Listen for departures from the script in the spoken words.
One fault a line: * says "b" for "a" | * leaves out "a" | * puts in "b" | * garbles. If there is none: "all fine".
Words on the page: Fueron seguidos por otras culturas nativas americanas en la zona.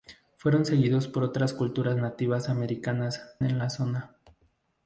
all fine